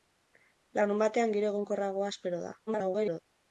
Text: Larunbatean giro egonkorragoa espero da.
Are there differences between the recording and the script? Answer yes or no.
yes